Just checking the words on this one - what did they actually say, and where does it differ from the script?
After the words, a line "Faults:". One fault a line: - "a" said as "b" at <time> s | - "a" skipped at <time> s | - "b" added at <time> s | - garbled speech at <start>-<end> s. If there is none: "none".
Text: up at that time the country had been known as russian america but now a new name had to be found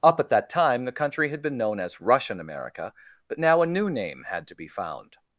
up at that time the country had been known as russian america but now a new name had to be found
Faults:
none